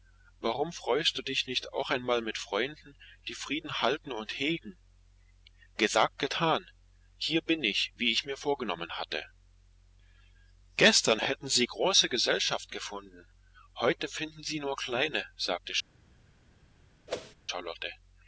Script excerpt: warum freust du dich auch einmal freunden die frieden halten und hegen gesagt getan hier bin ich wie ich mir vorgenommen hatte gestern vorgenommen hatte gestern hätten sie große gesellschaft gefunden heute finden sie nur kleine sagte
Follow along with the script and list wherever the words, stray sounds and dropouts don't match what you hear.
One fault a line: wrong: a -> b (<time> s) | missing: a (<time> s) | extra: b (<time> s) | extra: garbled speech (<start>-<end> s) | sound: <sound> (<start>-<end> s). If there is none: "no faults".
extra: nicht (1.4 s)
extra: mit (2.2 s)
missing: vorgenommen hatte gestern (11.2 s)
sound: whoosh (17.1-17.4 s)